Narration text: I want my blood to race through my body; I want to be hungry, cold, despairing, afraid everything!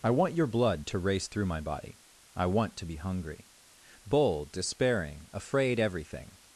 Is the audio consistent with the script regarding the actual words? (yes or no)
no